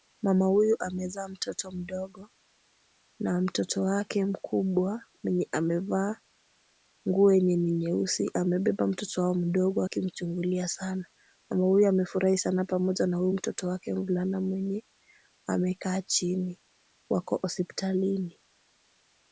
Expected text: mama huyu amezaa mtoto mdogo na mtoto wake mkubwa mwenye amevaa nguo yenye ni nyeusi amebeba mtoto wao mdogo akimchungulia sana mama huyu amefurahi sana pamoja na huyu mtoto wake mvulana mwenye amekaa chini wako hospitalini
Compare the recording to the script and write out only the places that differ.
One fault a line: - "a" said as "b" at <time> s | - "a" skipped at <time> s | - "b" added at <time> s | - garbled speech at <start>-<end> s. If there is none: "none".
none